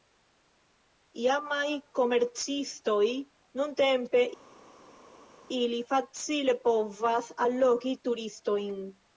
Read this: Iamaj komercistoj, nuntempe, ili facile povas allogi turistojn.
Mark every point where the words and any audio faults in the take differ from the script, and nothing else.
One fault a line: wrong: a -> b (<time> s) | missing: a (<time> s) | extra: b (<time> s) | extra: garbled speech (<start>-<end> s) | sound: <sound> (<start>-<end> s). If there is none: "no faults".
no faults